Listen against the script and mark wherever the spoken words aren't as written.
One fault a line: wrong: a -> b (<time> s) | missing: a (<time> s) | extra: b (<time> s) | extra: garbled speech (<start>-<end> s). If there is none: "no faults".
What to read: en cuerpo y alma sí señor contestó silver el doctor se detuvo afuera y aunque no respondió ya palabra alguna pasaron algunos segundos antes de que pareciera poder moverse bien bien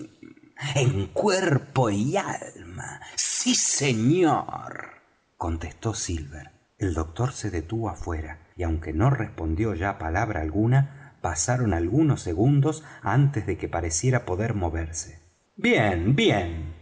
no faults